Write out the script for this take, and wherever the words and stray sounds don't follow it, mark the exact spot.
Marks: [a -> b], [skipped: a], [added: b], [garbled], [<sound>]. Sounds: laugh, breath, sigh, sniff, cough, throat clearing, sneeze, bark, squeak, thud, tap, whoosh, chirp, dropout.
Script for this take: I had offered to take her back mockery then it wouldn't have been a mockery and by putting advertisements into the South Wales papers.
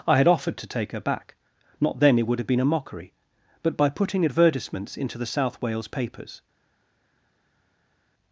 I had offered to take her back [mockery -> not] then it [wouldn't -> would] have been a mockery [and -> but] by putting advertisements into the South Wales papers.